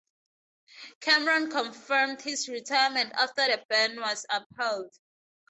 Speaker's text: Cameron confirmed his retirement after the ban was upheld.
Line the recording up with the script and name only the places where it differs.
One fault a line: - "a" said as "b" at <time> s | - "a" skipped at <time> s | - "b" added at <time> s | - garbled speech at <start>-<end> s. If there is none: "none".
none